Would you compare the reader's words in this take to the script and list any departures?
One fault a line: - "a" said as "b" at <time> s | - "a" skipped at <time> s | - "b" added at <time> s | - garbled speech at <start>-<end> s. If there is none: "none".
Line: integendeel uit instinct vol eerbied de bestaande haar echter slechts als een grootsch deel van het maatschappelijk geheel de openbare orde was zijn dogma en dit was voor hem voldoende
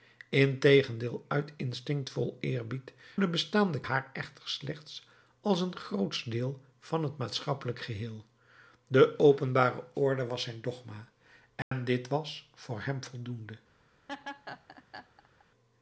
none